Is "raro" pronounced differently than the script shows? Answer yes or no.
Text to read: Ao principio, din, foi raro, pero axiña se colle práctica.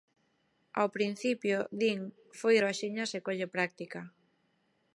yes